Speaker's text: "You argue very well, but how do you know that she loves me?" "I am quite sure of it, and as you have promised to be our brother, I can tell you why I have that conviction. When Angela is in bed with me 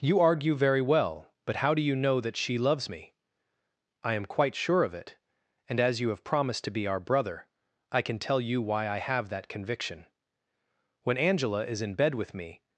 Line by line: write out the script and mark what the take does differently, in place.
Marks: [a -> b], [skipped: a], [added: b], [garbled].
"You argue very well, but how do you know that she loves me?" "I am quite sure of it, and as you have promised to be our brother, I can tell you why I have that conviction. When Angela is in bed with me